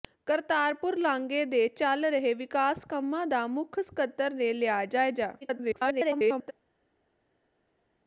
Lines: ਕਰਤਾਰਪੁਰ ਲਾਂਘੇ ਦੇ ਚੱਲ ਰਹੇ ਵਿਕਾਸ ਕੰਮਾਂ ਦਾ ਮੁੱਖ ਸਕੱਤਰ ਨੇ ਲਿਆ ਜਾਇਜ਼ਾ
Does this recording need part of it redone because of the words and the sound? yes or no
yes